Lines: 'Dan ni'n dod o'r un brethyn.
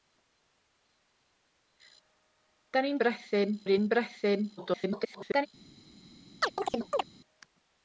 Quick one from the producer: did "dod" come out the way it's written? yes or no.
no